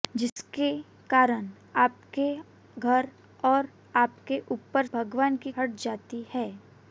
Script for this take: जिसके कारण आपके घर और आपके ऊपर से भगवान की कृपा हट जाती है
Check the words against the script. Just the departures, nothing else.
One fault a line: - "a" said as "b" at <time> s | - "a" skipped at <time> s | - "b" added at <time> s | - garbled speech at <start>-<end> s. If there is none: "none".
- "से" skipped at 4.8 s
- "कृपा" skipped at 5.5 s